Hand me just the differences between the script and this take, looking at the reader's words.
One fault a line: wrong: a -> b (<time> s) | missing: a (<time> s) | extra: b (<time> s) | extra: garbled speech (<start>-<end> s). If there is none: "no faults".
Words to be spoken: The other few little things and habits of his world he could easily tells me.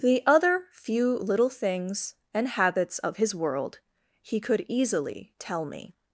wrong: tells -> tell (5.4 s)